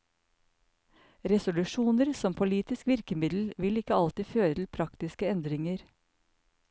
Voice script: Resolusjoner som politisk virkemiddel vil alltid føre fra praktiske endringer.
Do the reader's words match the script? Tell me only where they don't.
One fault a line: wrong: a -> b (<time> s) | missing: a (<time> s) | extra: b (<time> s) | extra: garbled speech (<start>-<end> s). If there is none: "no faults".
extra: ikke (3.8 s)
wrong: fra -> til (4.6 s)